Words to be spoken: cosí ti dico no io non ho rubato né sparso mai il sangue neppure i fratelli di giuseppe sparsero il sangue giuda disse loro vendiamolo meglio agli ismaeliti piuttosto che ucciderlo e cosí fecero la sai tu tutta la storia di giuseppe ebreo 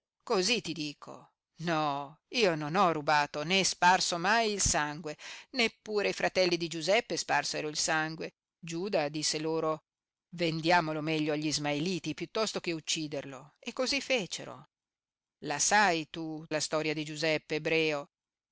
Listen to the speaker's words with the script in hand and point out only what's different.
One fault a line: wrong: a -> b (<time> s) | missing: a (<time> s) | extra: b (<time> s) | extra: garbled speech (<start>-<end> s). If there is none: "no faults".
missing: tutta (16.5 s)